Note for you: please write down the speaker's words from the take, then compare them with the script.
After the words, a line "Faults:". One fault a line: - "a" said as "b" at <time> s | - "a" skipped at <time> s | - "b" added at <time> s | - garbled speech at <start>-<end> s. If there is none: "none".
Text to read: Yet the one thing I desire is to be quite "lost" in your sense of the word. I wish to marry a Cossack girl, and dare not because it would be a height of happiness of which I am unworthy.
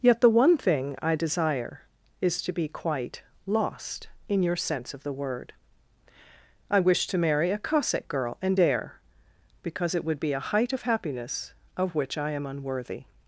Yet the one thing I desire is to be quite "lost" in your sense of the word. I wish to marry a Cossack girl, and dare because it would be a height of happiness of which I am unworthy.
Faults:
- "not" skipped at 9.0 s